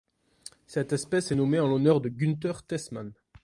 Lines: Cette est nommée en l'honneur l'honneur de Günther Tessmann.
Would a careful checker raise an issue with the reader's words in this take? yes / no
yes